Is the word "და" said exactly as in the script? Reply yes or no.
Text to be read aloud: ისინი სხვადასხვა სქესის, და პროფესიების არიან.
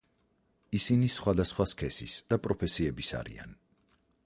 yes